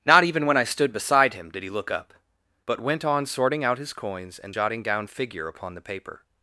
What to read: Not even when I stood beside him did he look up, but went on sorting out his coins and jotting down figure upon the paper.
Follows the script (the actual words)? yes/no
yes